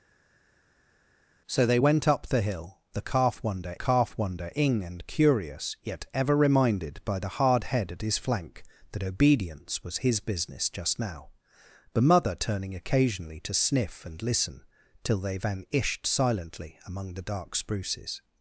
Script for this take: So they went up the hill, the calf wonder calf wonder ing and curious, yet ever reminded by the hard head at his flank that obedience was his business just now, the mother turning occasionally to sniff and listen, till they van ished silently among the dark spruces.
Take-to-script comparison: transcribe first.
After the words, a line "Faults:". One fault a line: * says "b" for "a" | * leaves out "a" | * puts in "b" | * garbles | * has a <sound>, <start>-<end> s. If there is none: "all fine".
So they went up the hill, the calf wonder calf wonder ing and curious, yet ever reminded by the hard head at his flank that obedience was his business just now, the mother turning occasionally to sniff and listen, till they van ished silently among the dark spruces.
Faults:
all fine